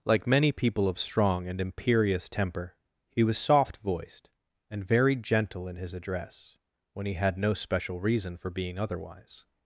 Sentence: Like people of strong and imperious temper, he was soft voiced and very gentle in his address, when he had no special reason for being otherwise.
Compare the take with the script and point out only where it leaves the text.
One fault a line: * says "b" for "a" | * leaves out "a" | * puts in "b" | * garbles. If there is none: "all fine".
* puts in "many"